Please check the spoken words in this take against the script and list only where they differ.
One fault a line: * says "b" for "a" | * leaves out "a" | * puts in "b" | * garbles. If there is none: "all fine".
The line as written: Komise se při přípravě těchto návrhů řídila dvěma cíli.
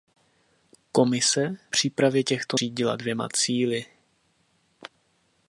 * leaves out "se při"
* leaves out "návrhů"